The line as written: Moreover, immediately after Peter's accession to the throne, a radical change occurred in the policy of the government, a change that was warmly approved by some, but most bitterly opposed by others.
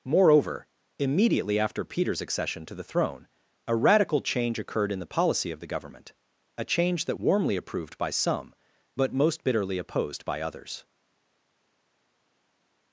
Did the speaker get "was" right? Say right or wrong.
wrong